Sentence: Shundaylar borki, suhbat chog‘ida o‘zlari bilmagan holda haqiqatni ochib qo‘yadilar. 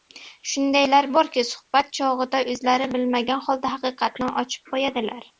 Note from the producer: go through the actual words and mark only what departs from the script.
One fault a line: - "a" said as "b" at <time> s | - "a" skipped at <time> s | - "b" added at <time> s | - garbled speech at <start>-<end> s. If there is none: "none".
none